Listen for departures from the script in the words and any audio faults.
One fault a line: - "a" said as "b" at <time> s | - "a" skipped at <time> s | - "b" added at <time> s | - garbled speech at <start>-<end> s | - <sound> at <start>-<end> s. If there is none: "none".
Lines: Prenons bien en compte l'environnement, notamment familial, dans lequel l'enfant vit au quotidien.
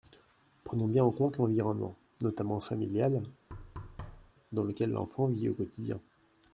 - thud at 3.5-4.3 s